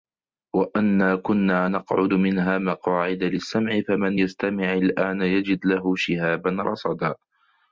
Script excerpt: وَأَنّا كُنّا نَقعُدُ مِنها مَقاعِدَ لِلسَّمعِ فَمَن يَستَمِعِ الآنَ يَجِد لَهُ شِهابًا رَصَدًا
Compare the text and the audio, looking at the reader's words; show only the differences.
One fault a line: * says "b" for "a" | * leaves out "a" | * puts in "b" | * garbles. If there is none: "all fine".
all fine